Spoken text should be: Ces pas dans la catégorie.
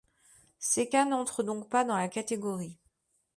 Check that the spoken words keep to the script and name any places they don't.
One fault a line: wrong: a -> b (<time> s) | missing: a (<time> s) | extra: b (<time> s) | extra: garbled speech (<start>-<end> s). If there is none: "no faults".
extra: cas n'entrent donc (0.9 s)